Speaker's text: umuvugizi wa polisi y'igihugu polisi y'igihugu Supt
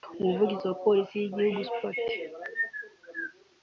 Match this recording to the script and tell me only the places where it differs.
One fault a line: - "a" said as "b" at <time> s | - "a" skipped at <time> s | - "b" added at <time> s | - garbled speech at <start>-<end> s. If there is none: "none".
- "polisi y'igihugu" skipped at 1.6 s